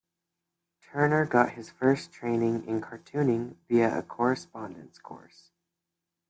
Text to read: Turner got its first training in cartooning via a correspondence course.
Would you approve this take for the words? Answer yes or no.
no